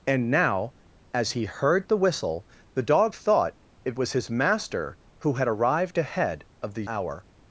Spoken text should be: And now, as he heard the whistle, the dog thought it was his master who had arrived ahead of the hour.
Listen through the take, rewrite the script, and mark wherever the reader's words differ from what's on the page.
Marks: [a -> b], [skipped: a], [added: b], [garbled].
And now, as he heard the whistle, the dog thought it was his master who had arrived ahead of the hour.